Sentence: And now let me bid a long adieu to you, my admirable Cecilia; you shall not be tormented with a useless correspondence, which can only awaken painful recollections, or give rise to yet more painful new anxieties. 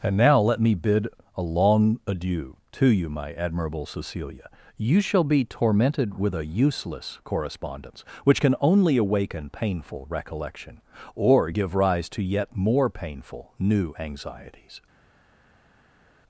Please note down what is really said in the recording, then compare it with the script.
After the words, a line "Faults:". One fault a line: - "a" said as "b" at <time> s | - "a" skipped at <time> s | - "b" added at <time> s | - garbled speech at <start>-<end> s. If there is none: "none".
And now let me bid a long adieu to you, my admirable Cecilia; you shall be tormented with a useless correspondence, which can only awaken painful recollection, or give rise to yet more painful new anxieties.
Faults:
- "not" skipped at 5.2 s
- "recollections" said as "recollection" at 10.1 s